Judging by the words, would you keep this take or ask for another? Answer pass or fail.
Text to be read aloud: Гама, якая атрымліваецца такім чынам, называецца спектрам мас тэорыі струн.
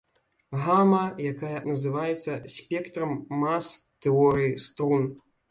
fail